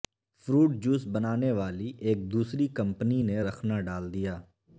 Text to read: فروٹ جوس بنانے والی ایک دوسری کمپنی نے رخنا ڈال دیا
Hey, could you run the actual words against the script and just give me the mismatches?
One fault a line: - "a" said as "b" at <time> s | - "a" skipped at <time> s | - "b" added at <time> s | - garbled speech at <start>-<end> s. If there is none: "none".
none